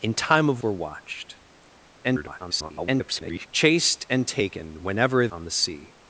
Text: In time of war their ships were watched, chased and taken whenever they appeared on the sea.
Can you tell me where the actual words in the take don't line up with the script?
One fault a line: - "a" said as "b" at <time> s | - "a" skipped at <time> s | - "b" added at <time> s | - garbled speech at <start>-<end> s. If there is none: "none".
- "war their ships" skipped at 0.6 s
- garbled speech at 2.0-3.5 s
- "they appeared" skipped at 5.3 s